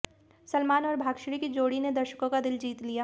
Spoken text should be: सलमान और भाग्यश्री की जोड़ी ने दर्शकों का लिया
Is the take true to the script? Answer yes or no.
no